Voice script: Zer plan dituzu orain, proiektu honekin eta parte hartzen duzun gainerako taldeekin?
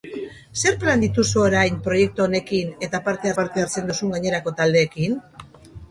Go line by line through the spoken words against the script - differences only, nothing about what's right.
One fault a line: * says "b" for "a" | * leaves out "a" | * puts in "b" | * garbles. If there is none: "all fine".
* puts in "parte"